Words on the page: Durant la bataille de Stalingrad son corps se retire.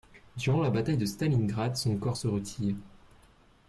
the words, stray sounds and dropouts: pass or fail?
pass